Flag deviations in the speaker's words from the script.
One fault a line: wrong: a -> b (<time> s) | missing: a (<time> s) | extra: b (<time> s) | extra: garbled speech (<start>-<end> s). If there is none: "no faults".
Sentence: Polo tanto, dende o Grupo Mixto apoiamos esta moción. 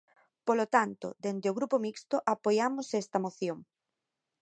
no faults